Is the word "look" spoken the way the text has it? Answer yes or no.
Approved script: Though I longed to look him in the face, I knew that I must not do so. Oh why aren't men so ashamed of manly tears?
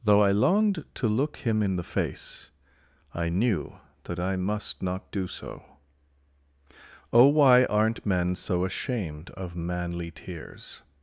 yes